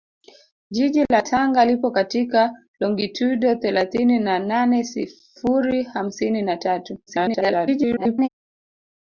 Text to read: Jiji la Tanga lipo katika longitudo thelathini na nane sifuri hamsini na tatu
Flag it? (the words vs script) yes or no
yes